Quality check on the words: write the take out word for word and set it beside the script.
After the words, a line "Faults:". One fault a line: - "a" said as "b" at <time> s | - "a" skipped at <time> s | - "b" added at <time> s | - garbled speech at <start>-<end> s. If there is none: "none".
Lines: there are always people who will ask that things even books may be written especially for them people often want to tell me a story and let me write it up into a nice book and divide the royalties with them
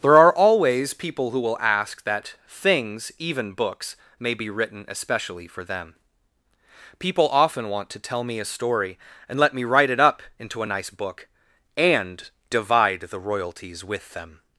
there are always people who will ask that things even books may be written especially for them people often want to tell me a story and let me write it up into a nice book and divide the royalties with them
Faults:
none